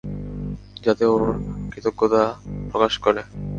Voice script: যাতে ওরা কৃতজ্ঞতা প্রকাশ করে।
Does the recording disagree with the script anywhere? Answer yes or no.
yes